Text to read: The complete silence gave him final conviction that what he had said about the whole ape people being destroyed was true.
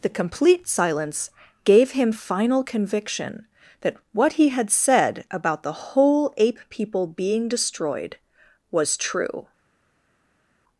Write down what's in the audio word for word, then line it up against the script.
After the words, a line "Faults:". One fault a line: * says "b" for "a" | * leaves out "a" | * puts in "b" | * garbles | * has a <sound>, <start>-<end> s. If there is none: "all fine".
The complete silence gave him final conviction that what he had said about the whole ape people being destroyed was true.
Faults:
all fine